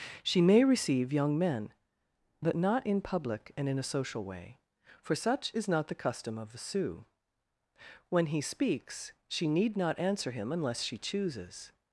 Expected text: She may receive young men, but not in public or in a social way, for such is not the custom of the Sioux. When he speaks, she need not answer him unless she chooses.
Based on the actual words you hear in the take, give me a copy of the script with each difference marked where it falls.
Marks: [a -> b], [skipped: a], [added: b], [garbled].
She may receive young men, but not in public [or -> and] in a social way, for such is not the custom of the Sioux. When he speaks, she need not answer him unless she chooses.